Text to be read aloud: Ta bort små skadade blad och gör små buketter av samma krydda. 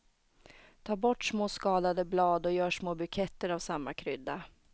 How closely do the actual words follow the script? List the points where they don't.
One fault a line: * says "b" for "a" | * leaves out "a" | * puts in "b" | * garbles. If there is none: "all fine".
all fine